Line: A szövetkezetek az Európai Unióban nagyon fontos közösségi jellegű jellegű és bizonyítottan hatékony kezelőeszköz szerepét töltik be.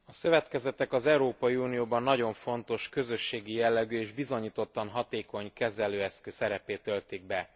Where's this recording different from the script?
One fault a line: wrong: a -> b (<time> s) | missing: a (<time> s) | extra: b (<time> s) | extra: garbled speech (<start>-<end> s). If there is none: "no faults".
missing: jellegű (4.0 s)